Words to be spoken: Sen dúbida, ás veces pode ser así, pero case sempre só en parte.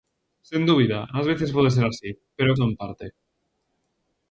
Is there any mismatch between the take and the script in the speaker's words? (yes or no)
yes